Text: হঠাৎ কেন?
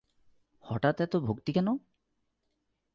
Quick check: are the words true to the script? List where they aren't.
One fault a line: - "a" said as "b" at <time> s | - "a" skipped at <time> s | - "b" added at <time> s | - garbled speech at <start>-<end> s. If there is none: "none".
- "এত ভক্তি" added at 1.0 s